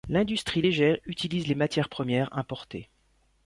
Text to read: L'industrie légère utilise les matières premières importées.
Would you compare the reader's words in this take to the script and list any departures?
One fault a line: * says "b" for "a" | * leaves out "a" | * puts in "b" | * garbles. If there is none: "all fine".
all fine